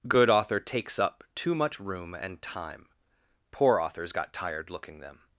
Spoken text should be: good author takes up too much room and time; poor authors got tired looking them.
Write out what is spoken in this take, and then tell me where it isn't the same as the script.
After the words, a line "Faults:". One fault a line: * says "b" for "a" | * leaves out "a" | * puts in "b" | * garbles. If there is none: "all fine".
good author takes up too much room and time; poor authors got tired looking them.
Faults:
all fine